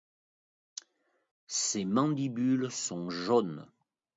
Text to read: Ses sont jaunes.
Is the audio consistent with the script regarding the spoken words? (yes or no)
no